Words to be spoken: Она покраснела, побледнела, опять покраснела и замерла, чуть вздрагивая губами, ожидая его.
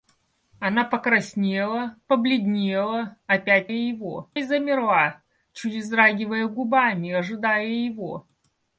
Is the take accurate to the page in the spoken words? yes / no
no